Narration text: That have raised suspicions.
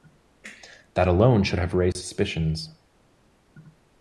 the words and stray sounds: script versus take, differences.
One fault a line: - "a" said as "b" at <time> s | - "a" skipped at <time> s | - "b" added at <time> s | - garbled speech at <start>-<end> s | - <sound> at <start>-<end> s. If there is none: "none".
- "alone should" added at 1.1 s
- dropout at 1.9-2.0 s